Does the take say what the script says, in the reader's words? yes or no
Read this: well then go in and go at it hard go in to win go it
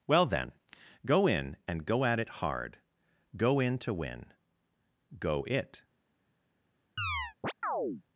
yes